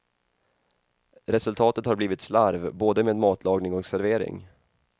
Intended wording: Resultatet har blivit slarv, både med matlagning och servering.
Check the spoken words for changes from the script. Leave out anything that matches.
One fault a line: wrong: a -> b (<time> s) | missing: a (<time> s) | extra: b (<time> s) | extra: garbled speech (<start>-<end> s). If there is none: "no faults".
no faults